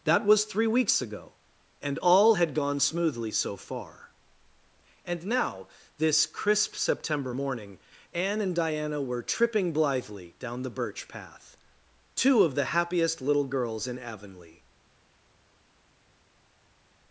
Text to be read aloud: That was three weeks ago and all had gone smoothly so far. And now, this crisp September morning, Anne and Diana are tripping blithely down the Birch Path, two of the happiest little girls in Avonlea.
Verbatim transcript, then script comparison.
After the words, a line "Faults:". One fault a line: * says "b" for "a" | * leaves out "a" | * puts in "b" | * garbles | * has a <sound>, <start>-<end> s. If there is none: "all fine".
That was three weeks ago and all had gone smoothly so far. And now, this crisp September morning, Anne and Diana were tripping blithely down the Birch Path, two of the happiest little girls in Avonlea.
Faults:
* says "were" for "are"